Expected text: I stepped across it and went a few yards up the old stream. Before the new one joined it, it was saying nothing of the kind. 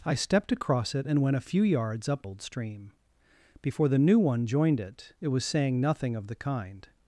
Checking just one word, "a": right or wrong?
right